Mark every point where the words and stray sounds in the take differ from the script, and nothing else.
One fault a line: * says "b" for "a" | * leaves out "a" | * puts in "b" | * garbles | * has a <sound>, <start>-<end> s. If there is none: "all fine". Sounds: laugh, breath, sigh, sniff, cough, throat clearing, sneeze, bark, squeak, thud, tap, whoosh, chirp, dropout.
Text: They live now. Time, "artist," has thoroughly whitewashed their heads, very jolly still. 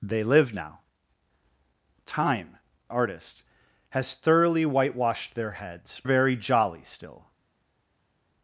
all fine